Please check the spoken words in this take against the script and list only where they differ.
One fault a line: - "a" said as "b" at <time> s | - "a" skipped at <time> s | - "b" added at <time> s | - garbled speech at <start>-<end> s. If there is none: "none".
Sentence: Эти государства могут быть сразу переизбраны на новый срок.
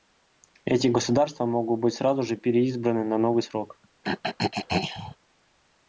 - "же" added at 2.2 s